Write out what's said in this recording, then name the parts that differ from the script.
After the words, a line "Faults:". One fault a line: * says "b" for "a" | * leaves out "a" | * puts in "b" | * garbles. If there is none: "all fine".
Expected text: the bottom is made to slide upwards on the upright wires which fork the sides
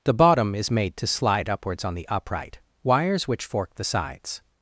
the bottom is made to slide upwards on the upright wires which fork the sides
Faults:
all fine